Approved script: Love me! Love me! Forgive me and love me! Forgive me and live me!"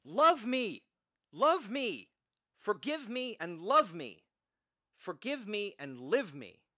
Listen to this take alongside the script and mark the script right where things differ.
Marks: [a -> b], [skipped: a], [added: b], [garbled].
Love me! Love me! Forgive me and love me! Forgive me and live me!"